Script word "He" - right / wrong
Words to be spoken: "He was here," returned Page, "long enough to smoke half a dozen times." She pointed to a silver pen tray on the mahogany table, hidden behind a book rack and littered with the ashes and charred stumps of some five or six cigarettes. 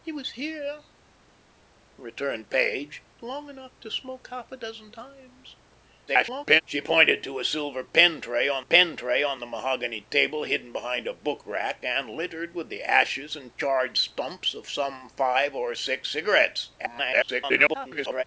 right